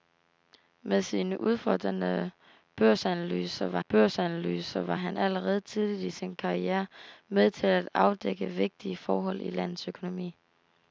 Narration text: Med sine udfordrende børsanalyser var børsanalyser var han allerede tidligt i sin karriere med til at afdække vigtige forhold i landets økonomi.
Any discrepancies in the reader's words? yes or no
no